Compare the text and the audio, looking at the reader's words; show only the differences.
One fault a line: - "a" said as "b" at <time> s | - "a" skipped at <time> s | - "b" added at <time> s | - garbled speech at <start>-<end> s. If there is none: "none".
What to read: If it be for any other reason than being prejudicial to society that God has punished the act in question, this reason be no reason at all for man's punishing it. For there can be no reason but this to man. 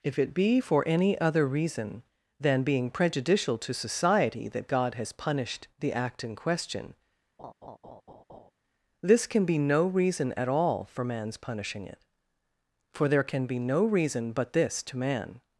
- "reason" said as "can" at 9.3 s